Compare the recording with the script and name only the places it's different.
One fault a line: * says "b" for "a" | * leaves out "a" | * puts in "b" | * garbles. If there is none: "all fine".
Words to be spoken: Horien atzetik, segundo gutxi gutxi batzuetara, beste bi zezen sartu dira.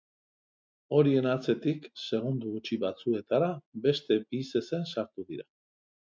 * leaves out "gutxi"